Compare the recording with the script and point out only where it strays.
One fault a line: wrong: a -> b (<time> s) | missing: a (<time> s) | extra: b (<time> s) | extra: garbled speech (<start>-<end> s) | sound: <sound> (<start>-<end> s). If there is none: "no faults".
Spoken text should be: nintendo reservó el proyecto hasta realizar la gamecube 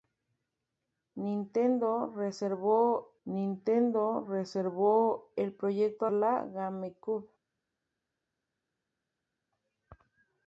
extra: nintendo reservó (3.2 s)
missing: hasta realizar (6.1 s)